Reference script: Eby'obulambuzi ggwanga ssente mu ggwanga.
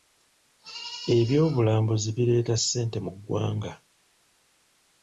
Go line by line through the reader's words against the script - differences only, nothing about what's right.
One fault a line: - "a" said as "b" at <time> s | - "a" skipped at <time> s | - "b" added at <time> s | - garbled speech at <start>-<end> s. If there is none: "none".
- "ggwanga" said as "bireeta" at 2.2 s